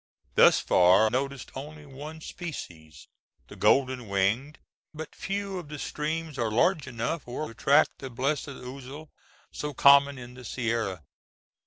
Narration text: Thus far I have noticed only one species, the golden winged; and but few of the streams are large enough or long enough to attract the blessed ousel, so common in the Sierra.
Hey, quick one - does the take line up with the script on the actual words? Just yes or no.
no